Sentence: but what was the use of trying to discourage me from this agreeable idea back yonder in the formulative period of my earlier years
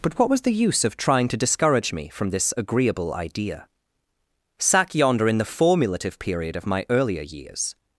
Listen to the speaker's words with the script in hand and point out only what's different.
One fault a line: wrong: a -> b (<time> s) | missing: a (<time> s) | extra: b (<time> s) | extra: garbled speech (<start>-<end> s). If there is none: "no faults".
wrong: back -> sack (4.6 s)